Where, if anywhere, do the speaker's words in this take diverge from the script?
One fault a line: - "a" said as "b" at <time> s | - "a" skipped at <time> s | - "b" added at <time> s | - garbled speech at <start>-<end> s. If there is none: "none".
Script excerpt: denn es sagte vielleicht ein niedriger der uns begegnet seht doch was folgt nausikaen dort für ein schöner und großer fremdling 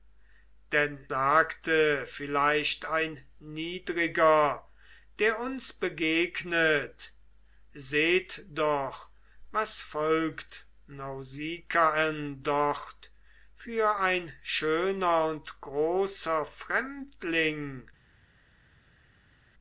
- "es" skipped at 1.1 s